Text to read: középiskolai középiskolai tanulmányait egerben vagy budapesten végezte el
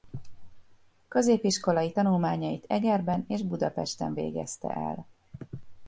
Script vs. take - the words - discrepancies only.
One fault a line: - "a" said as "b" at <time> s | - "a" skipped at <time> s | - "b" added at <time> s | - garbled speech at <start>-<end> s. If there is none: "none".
- "középiskolai" skipped at 1.9 s
- "vagy" said as "és" at 3.3 s